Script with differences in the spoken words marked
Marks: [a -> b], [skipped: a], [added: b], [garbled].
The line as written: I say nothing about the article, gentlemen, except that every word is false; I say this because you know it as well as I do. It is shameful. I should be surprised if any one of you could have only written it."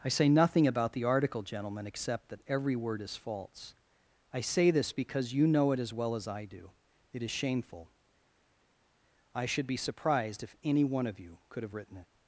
I say nothing about the article, gentlemen, except that every word is false; I say this because you know it as well as I do. It is shameful. I should be surprised if any one of you could have [skipped: only] written it."